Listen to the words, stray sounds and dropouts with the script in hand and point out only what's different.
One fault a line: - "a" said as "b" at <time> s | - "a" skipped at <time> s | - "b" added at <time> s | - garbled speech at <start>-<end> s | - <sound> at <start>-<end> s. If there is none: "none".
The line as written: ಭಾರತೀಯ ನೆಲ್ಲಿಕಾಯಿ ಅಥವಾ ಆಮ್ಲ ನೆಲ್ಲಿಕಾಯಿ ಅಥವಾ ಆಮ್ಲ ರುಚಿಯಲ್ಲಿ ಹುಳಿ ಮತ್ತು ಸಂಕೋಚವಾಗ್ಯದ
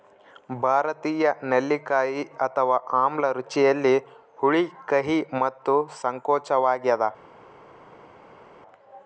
- "ನೆಲ್ಲಿಕಾಯಿ ಅಥವಾ ಆಮ್ಲ" skipped at 3.3 s
- "ಕಹಿ" added at 4.9 s